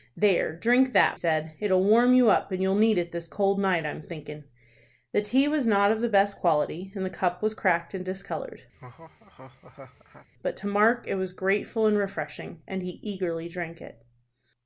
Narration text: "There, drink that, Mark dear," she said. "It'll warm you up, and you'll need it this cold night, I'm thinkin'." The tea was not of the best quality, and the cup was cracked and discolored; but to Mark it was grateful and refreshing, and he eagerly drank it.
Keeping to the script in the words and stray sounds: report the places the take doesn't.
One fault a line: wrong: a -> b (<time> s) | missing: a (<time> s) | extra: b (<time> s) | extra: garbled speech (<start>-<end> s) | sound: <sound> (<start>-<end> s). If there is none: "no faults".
missing: Mark dear she (1.2 s)
sound: laugh (8.7-10.3 s)